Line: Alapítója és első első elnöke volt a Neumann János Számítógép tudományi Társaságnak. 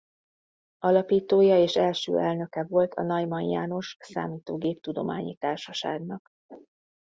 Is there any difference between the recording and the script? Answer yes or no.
yes